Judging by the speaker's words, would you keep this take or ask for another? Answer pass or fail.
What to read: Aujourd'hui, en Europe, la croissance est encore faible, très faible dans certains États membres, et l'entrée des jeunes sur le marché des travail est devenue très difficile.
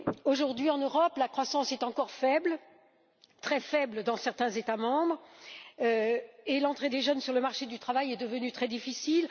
fail